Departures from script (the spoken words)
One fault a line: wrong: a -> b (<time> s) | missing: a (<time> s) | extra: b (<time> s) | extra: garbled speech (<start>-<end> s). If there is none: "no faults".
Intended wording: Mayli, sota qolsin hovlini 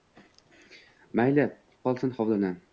missing: sota (1.4 s)